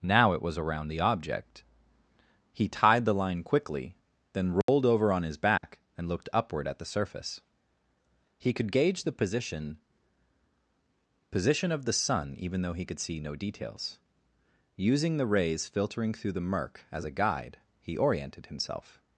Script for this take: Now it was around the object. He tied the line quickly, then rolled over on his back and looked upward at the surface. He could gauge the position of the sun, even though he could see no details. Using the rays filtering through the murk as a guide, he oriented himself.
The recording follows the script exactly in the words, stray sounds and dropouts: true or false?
false